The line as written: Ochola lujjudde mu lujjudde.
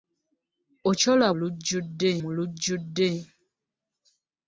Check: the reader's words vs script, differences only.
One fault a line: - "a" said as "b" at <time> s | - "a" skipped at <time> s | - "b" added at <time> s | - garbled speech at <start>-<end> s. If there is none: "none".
none